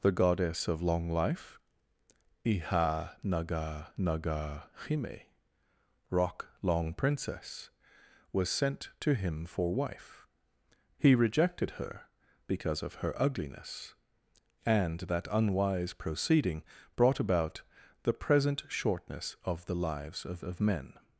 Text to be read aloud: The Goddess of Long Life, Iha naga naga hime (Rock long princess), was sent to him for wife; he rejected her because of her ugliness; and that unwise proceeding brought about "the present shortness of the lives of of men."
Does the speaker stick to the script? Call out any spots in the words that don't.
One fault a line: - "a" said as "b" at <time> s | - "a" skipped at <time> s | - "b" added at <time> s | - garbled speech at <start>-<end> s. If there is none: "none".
none